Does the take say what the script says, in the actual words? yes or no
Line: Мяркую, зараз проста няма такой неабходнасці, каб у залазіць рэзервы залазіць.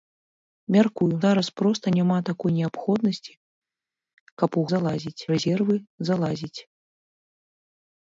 yes